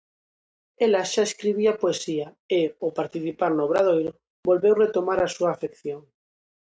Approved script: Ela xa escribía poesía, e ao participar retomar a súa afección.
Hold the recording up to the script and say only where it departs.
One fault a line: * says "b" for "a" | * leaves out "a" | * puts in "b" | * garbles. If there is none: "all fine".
* puts in "no obradoiro volveu"